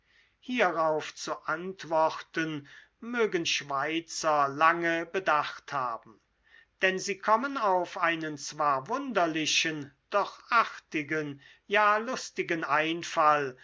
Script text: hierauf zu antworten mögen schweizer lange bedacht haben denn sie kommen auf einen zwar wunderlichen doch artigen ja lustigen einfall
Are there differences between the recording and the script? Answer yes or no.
no